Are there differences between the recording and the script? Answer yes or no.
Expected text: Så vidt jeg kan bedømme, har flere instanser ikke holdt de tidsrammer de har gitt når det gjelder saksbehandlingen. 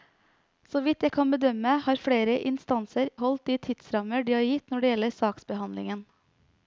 yes